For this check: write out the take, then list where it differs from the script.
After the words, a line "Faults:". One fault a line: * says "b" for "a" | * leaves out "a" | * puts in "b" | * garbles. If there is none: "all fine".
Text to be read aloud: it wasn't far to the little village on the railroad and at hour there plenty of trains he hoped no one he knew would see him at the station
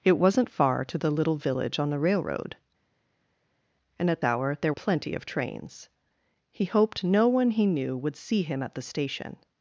it wasn't far to the little village on the railroad and at hour there plenty of trains he hoped no one he knew would see him at the station
Faults:
all fine